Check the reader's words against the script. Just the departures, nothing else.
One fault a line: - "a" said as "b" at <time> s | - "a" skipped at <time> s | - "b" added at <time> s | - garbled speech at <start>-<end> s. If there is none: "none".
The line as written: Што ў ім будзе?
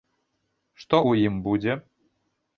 none